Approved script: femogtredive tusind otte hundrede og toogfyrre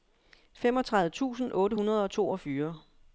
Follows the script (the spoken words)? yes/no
yes